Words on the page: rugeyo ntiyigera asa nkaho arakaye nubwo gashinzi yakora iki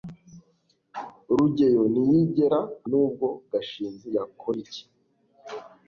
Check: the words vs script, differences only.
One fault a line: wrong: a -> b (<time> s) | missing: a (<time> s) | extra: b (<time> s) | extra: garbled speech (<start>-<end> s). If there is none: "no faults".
missing: asa nkaho arakaye (2.6 s)